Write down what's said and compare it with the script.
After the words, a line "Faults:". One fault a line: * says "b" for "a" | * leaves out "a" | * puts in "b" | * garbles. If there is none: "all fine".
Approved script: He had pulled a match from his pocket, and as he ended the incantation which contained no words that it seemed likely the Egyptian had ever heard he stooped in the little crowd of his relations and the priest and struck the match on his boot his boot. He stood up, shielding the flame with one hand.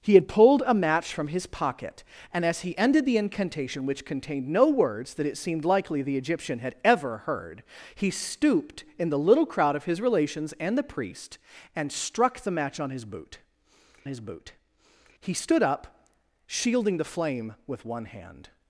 He had pulled a match from his pocket, and as he ended the incantation which contained no words that it seemed likely the Egyptian had ever heard he stooped in the little crowd of his relations and the priest and struck the match on his boot his boot. He stood up, shielding the flame with one hand.
Faults:
all fine